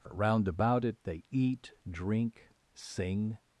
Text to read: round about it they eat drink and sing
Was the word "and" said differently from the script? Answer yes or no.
yes